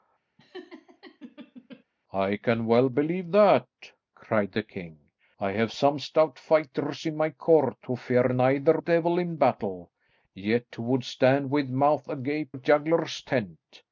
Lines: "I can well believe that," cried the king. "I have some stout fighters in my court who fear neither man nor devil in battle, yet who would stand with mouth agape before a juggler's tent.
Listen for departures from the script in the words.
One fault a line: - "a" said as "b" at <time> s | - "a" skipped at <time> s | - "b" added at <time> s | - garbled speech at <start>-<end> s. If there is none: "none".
- "man nor" skipped at 8.8 s
- "before" skipped at 12.5 s